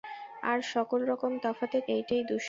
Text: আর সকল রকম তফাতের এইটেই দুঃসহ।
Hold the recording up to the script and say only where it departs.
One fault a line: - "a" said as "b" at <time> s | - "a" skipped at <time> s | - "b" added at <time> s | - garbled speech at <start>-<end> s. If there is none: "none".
none